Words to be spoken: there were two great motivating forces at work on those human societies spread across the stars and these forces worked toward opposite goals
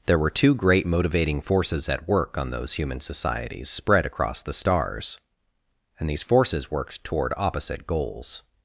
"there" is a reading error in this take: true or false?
false